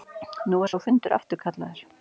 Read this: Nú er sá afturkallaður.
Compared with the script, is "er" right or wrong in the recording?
right